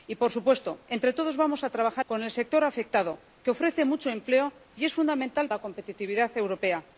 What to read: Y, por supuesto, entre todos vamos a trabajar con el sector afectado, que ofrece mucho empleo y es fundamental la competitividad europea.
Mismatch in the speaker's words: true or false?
false